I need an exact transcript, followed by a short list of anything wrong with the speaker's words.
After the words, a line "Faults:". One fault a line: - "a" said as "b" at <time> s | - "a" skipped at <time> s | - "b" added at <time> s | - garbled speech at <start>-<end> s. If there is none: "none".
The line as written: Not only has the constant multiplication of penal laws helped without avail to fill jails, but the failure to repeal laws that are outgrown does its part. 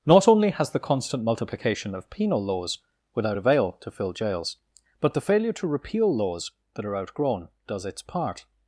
Not only has the constant multiplication of penal laws without avail to fill jails, but the failure to repeal laws that are outgrown does its part.
Faults:
- "helped" skipped at 2.8 s